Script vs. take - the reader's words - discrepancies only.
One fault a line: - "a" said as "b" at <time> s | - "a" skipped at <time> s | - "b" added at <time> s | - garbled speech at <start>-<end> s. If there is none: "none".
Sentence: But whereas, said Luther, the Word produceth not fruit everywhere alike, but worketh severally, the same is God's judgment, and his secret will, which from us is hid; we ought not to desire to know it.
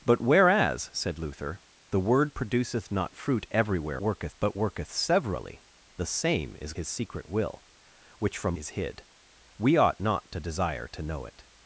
- "alike" said as "worketh" at 4.0 s
- "God's judgment and" skipped at 6.7 s
- "us" skipped at 8.6 s